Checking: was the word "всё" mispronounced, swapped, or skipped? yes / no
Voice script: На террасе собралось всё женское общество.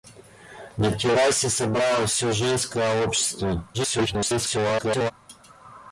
no